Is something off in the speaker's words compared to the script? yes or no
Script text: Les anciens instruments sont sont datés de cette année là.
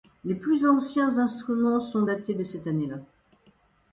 yes